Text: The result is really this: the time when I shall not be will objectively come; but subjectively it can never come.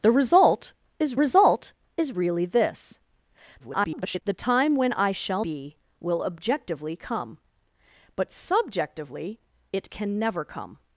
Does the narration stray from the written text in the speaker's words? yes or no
yes